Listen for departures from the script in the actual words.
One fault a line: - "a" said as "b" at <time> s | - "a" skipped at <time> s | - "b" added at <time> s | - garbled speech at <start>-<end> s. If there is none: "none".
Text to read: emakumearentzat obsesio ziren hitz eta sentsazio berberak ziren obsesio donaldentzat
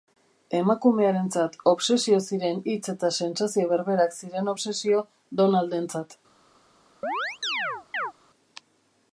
none